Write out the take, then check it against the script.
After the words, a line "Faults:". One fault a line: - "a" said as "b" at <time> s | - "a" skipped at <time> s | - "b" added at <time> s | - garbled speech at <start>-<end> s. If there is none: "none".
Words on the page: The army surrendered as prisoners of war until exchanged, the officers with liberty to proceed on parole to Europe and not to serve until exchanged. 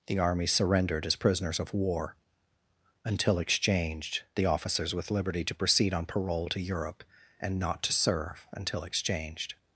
The army surrendered as prisoners of war until exchanged, the officers with liberty to proceed on parole to Europe and not to serve until exchanged.
Faults:
none